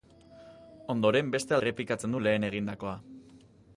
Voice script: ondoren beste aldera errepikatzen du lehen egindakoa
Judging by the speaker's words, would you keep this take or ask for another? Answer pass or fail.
fail